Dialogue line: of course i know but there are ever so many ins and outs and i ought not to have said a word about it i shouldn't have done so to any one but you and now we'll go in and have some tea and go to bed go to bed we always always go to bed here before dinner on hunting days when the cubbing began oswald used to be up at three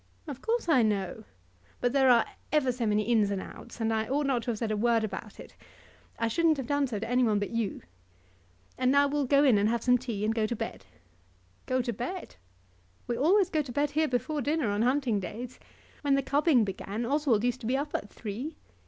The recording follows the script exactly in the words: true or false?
false